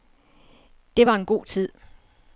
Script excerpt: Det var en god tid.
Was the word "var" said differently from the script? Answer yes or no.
no